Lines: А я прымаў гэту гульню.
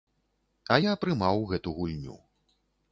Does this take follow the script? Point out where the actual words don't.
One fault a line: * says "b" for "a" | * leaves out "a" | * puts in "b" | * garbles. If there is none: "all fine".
all fine